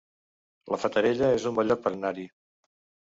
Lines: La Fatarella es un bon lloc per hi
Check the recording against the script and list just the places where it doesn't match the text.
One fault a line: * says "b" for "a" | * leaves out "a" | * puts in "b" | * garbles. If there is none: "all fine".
* puts in "anar"